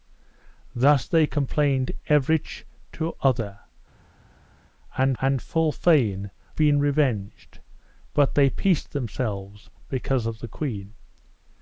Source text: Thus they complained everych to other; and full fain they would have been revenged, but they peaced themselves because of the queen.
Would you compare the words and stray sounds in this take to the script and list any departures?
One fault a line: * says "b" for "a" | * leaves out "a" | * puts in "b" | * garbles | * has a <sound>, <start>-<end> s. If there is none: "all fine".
* puts in "and"
* leaves out "they would have"